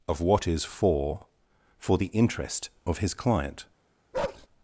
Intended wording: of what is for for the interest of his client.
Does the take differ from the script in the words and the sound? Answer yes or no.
yes